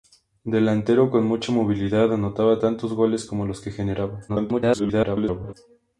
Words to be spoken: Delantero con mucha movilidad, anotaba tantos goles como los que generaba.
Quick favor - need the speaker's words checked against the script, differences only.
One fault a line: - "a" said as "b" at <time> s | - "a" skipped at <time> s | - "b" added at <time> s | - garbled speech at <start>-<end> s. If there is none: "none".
- garbled speech at 4.3-5.5 s